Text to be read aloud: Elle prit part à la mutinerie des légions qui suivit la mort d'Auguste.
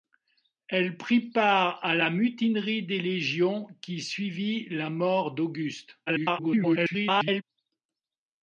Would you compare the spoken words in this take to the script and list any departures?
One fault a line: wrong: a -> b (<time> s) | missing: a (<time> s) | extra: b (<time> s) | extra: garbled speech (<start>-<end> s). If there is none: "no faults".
extra: garbled speech (6.1-7.4 s)